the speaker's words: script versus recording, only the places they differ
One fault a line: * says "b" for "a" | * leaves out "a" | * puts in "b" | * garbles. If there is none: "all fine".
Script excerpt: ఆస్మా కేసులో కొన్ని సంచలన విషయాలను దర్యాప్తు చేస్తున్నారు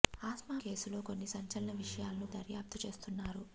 all fine